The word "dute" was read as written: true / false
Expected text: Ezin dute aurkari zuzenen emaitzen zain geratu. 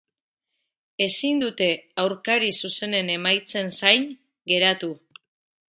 true